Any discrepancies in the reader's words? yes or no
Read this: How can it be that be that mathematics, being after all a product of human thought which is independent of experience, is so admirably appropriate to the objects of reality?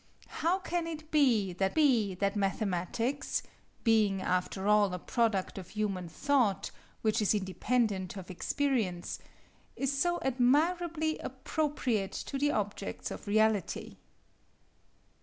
no